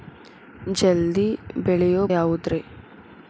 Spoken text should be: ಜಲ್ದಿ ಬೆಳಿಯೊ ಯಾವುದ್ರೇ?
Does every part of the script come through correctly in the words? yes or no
yes